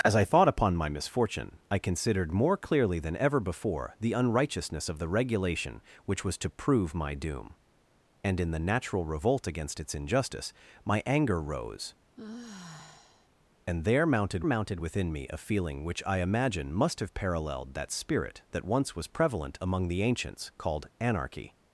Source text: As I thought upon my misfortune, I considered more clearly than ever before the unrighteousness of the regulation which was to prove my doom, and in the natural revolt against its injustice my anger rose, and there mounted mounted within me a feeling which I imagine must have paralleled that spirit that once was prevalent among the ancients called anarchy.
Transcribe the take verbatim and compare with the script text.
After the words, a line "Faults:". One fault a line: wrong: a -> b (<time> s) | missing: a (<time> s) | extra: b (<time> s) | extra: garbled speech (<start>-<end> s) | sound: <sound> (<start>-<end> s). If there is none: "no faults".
As I thought upon my misfortune, I considered more clearly than ever before the unrighteousness of the regulation which was to prove my doom, and in the natural revolt against its injustice my anger rose, and there mounted mounted within me a feeling which I imagine must have paralleled that spirit that once was prevalent among the ancients called anarchy.
Faults:
sound: sigh (12.2-13.3 s)